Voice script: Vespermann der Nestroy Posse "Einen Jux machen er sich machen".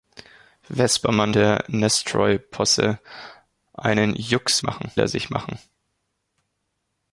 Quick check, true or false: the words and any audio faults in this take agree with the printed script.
true